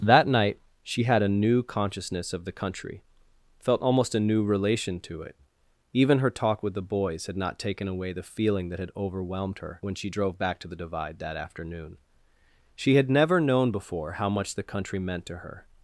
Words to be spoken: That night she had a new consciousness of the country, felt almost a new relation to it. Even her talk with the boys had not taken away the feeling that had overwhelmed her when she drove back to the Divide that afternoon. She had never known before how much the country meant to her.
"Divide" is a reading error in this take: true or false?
false